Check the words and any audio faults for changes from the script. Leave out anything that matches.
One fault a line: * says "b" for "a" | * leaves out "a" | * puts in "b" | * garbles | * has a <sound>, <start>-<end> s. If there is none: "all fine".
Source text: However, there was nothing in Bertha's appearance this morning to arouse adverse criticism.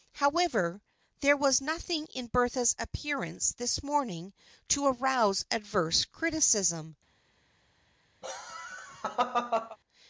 * has a laugh, 8.2-9.8 s